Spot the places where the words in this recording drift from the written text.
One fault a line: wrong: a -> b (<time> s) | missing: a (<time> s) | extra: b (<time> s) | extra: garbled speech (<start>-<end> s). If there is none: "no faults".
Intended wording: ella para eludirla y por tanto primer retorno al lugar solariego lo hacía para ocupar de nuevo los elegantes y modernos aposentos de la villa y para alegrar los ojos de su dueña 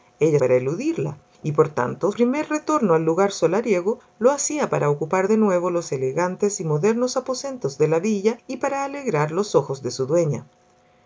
no faults